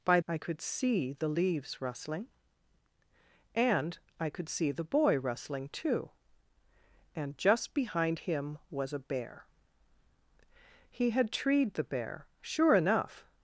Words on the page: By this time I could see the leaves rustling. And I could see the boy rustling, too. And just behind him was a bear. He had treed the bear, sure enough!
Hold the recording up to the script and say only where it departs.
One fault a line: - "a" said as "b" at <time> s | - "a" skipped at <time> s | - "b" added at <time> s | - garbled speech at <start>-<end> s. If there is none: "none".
- "this time" skipped at 0.2 s